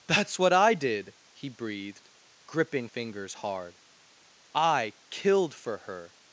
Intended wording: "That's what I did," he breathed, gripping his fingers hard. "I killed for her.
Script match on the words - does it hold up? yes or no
no